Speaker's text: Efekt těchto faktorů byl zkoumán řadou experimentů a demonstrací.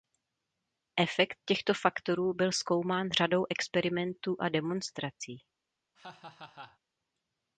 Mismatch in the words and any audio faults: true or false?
true